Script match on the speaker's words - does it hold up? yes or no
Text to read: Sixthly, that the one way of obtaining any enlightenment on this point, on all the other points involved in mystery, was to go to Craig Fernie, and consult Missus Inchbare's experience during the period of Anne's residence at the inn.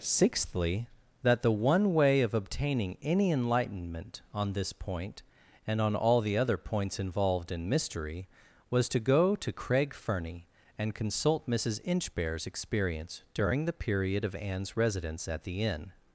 no